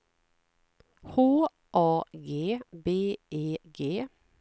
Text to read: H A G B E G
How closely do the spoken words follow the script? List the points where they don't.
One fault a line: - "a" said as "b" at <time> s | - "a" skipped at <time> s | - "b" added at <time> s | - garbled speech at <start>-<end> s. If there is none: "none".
none